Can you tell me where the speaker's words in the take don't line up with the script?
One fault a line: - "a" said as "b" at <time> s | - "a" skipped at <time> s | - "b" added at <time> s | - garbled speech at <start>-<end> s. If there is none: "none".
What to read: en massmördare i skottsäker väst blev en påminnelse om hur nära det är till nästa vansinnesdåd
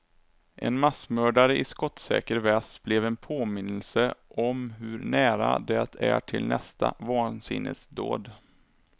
none